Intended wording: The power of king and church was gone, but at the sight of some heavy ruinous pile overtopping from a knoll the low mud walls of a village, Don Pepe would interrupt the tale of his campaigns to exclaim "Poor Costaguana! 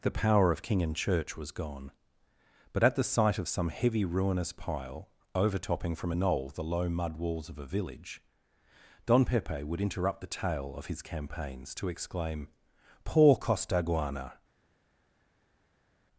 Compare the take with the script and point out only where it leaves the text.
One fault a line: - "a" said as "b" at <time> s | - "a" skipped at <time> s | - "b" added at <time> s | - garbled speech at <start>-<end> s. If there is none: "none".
none